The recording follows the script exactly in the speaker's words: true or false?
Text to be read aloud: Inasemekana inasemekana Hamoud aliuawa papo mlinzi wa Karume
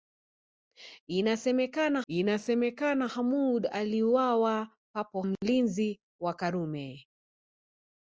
true